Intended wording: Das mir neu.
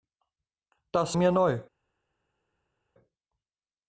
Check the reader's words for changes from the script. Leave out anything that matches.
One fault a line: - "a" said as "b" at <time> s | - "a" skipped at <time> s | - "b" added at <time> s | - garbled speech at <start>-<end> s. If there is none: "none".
none